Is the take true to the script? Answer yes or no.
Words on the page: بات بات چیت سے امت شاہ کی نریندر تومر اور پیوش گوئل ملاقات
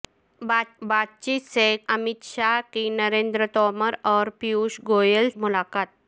yes